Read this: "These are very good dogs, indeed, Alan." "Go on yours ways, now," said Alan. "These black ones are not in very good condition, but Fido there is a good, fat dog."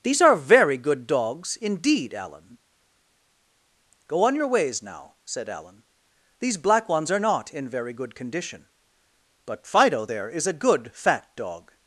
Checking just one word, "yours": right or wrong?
wrong